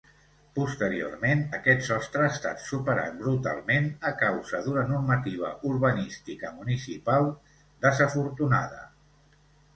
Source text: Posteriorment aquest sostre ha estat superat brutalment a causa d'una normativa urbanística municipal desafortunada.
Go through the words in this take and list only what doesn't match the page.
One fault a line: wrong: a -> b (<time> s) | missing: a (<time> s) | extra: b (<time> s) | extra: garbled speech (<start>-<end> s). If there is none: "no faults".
no faults